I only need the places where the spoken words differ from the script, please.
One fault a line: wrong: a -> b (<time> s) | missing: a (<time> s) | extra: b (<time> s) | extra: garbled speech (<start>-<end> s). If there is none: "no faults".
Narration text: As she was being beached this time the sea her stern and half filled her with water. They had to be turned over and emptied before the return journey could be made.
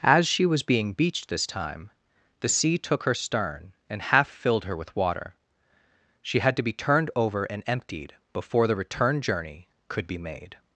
extra: took (2.8 s)
wrong: They -> She (6.2 s)